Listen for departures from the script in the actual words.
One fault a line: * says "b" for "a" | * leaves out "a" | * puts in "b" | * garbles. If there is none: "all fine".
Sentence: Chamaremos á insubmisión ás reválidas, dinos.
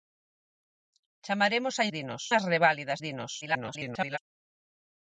* says "dinos" for "insubmisión"
* garbles